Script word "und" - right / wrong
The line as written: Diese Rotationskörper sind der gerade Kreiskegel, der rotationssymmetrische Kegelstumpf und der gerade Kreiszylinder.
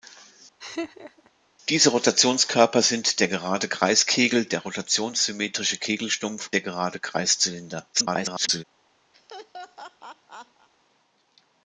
wrong